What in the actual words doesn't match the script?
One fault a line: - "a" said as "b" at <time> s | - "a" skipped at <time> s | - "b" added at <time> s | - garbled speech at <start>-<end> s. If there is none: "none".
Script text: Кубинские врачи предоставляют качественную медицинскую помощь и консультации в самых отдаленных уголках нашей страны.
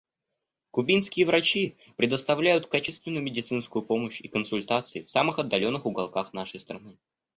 none